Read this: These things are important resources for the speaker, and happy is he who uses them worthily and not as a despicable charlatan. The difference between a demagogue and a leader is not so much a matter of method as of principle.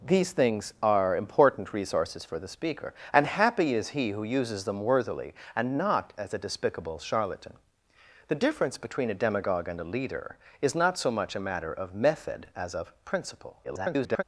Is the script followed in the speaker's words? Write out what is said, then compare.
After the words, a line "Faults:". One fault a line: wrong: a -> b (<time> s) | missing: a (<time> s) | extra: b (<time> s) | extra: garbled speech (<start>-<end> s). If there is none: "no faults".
These things are important resources for the speaker, and happy is he who uses them worthily and not as a despicable charlatan. The difference between a demagogue and a leader is not so much a matter of method as of principle. [garbled]
Faults:
extra: garbled speech (13.6-14.2 s)